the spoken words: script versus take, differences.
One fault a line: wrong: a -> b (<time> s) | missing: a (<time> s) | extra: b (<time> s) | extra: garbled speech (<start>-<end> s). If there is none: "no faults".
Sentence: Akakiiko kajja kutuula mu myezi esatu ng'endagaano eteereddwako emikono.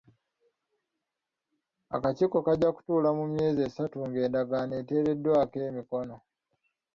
no faults